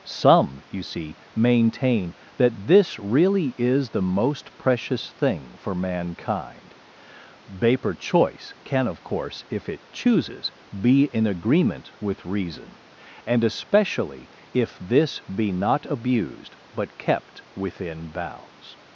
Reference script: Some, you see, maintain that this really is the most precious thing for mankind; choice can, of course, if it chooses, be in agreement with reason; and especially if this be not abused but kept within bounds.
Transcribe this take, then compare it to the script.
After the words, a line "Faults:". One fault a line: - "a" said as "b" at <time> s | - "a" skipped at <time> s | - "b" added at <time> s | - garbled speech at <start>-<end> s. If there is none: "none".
Some, you see, maintain that this really is the most precious thing for mankind; vapor choice can, of course, if it chooses, be in agreement with reason; and especially if this be not abused but kept within bounds.
Faults:
- "vapor" added at 7.5 s